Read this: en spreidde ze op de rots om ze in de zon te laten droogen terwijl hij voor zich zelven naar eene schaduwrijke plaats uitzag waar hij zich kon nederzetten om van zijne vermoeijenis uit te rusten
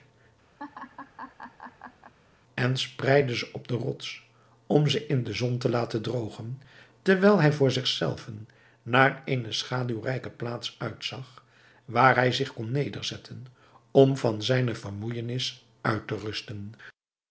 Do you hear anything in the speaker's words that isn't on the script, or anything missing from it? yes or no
no